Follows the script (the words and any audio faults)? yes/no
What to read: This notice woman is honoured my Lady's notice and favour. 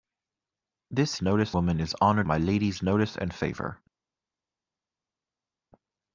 yes